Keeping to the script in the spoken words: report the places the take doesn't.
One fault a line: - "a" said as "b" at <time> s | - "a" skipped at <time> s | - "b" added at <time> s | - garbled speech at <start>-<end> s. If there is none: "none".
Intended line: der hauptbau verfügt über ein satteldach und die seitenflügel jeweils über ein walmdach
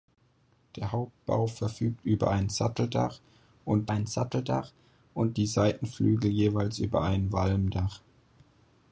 - "ein satteldach und" added at 3.9 s